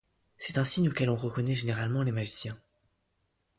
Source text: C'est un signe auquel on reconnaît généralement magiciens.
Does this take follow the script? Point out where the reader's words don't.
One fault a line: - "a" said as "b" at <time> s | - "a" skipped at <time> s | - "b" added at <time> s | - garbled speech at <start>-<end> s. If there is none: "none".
- "les" added at 2.0 s